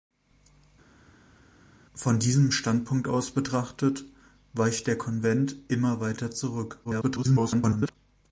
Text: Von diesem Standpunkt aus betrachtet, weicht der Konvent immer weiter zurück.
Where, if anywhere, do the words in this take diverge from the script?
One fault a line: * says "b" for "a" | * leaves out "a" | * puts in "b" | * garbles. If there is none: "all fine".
* garbles